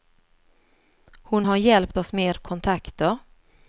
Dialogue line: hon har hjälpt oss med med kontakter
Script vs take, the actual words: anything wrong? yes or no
yes